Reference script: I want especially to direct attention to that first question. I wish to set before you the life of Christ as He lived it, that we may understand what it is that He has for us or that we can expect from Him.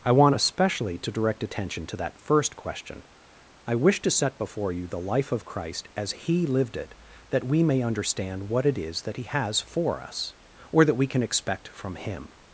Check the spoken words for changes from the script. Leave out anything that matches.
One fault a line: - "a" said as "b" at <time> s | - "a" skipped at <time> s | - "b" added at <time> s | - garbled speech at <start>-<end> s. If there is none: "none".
none